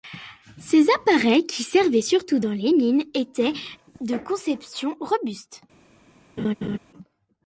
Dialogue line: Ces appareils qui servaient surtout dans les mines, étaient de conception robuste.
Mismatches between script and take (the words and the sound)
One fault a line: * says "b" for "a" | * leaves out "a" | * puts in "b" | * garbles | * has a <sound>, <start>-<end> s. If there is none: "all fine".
* has a laugh, 6.4-6.8 s